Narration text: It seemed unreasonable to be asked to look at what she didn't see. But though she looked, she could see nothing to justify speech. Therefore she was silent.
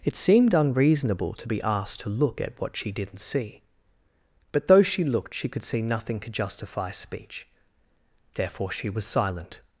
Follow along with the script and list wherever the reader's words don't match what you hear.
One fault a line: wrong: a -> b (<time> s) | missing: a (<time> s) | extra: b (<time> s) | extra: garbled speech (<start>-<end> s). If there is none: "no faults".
no faults